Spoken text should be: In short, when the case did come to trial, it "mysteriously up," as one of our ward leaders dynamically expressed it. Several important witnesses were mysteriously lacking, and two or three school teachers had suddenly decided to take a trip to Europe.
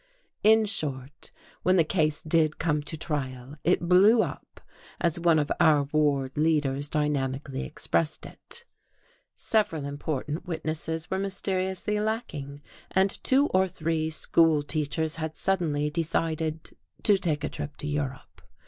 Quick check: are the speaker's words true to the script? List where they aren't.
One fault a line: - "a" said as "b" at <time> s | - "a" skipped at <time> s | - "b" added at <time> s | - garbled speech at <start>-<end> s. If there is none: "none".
- "mysteriously" said as "blew" at 3.9 s